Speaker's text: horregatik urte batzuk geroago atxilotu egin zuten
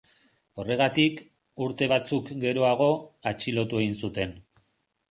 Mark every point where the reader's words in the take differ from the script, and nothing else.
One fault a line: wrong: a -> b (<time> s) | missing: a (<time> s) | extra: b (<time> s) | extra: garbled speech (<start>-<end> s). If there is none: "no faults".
no faults